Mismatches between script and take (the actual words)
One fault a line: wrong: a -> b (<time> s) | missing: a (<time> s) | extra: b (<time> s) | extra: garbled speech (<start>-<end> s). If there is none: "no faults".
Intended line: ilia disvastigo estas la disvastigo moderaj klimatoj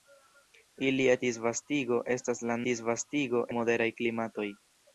no faults